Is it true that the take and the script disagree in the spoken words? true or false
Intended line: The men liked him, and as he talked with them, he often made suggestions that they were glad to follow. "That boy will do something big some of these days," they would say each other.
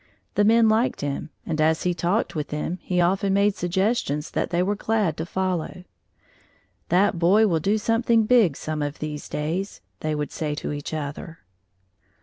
true